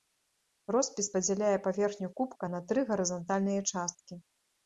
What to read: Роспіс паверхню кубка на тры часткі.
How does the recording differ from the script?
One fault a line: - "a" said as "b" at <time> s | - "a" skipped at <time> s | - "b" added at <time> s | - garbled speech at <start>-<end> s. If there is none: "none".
- "падзяляе" added at 1.1 s
- "гарызантальныя" added at 2.9 s